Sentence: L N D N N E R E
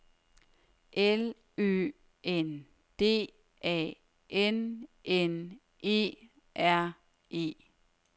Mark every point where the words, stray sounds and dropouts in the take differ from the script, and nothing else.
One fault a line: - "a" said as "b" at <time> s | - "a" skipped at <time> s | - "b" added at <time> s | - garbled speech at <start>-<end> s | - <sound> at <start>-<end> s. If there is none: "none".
- "Ø" added at 1.6 s
- "A" added at 3.6 s